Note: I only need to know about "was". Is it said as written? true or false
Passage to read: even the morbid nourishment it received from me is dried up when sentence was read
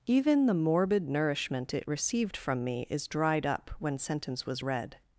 true